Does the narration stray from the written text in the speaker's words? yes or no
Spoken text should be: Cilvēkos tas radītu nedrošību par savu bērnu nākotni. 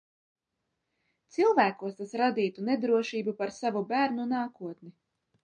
no